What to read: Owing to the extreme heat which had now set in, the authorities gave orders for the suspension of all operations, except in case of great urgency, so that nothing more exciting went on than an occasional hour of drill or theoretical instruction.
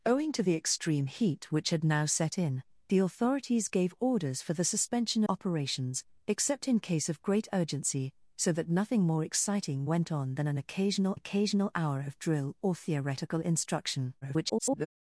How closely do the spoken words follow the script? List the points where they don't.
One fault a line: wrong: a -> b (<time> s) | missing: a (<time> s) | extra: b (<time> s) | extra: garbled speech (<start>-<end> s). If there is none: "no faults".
missing: of all (5.2 s)
extra: occasional (11.1 s)
extra: garbled speech (14.2-14.9 s)